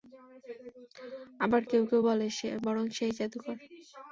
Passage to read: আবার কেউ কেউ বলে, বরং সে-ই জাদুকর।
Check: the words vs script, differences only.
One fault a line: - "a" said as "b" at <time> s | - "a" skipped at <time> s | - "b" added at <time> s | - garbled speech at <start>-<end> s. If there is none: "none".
none